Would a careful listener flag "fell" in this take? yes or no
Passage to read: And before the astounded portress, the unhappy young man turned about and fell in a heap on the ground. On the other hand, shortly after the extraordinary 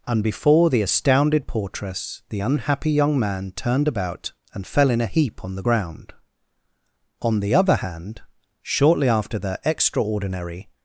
no